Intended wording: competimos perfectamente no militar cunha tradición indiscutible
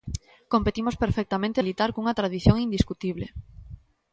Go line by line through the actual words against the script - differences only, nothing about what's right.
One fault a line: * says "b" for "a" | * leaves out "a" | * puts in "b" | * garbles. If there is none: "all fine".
* leaves out "no"